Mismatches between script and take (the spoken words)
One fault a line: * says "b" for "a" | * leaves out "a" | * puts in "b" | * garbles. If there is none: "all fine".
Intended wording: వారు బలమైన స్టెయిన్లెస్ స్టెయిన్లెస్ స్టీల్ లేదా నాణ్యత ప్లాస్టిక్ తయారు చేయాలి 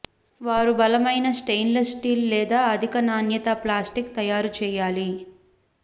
* leaves out "స్టెయిన్లెస్"
* puts in "అధిక"